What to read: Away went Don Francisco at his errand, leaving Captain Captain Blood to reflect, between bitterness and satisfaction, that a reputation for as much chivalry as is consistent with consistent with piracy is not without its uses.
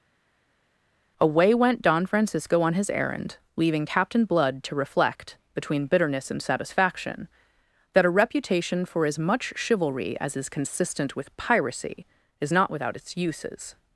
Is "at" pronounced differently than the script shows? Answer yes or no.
yes